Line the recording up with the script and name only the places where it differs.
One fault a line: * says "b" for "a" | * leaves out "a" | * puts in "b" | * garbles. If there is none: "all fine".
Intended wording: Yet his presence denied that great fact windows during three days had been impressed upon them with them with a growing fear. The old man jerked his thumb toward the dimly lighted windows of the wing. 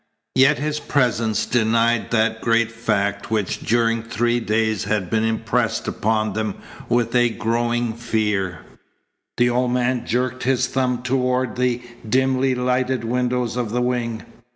* says "which" for "windows"
* leaves out "them with"